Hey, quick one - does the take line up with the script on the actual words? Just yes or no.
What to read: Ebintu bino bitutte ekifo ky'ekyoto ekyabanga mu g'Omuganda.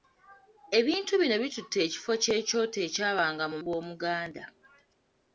yes